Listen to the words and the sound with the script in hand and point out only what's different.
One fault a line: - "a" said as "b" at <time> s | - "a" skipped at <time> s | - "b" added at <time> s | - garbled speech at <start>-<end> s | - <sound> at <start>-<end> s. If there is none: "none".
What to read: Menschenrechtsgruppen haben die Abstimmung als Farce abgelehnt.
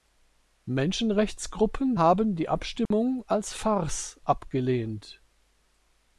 - dropout at 2.9-2.9 s